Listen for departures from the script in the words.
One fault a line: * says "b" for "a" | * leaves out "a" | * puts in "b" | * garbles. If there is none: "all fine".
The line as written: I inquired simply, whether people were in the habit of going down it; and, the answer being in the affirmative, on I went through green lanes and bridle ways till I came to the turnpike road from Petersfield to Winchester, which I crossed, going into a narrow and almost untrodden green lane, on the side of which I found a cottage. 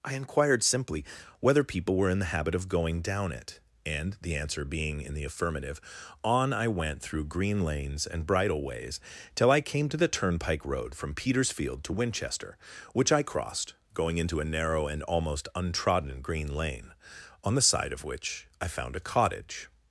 all fine